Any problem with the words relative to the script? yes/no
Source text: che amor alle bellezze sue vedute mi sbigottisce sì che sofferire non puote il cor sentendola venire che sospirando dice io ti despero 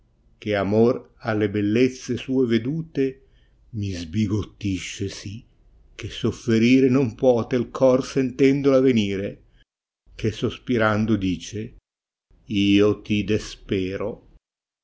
no